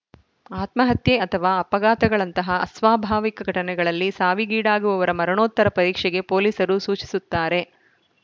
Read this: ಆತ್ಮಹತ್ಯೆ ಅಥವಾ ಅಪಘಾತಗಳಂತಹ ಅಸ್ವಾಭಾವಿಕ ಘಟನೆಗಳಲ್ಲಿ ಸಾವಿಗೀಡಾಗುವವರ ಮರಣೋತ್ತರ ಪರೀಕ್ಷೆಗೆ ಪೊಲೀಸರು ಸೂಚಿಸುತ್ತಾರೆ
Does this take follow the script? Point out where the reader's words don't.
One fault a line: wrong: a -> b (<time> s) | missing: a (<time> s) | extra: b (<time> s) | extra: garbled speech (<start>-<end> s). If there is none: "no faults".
no faults